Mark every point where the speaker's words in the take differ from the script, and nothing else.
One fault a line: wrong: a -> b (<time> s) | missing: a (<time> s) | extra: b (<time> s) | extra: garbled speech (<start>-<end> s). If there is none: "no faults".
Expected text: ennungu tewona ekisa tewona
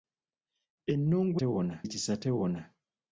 no faults